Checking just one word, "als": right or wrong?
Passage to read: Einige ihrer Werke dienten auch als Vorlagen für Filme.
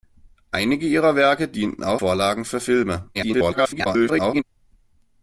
wrong